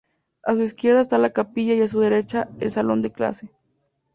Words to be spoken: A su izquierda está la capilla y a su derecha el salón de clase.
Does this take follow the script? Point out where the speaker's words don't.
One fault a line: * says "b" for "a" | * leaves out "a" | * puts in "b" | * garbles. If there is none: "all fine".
all fine